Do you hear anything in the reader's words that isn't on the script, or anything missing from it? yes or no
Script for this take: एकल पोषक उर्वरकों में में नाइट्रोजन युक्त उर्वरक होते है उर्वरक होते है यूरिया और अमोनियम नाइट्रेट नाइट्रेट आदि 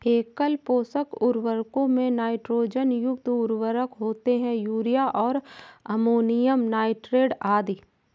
yes